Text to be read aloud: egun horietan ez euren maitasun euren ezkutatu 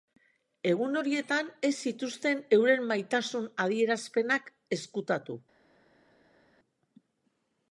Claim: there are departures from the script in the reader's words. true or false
true